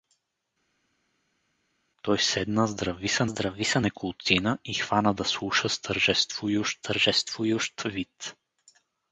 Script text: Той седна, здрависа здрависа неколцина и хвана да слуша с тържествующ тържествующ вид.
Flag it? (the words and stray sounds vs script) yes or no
no